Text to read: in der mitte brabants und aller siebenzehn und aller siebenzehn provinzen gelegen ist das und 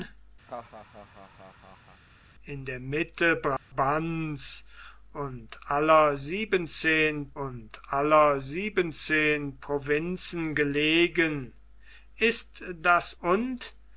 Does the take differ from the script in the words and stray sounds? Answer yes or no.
yes